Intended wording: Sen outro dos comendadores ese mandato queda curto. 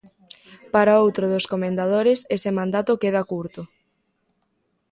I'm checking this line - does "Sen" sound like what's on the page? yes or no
no